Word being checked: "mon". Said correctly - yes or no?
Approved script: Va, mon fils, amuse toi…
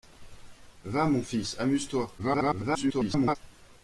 yes